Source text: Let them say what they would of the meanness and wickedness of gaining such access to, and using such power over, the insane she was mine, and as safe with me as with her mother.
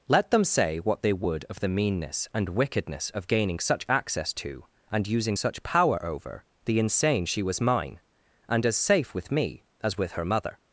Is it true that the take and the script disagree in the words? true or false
false